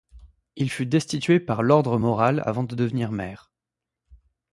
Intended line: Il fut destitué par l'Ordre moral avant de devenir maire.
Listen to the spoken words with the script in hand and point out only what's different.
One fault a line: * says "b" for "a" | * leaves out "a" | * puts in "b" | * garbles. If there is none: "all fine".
all fine